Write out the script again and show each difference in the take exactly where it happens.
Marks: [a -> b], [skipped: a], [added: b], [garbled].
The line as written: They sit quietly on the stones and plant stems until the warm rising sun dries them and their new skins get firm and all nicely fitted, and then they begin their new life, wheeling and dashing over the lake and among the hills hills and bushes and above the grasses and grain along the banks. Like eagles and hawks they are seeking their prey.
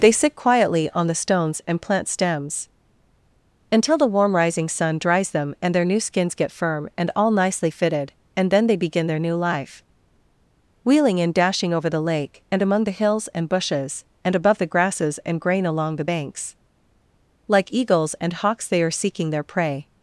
They sit quietly on the stones and plant stems until the warm rising sun dries them and their new skins get firm and all nicely fitted, and then they begin their new life, wheeling and dashing over the lake and among the hills [skipped: hills] and bushes and above the grasses and grain along the banks. Like eagles and hawks they are seeking their prey.